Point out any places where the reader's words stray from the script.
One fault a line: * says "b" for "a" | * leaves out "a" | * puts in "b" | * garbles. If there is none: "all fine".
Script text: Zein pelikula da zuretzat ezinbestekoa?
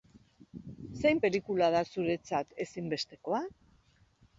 all fine